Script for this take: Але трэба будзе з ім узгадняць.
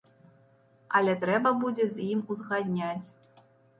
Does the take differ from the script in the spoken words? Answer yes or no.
no